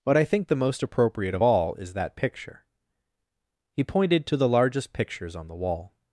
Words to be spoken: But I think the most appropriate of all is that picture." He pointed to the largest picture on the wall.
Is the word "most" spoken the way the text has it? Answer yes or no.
yes